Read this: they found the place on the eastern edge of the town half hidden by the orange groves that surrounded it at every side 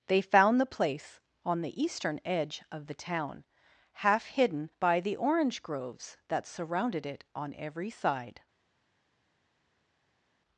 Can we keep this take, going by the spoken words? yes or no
no